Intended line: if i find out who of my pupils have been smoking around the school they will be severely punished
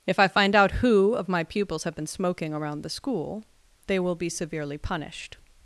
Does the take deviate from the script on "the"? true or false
false